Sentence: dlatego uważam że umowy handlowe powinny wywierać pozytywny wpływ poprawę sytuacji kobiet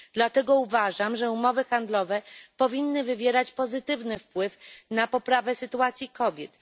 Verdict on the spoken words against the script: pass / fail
fail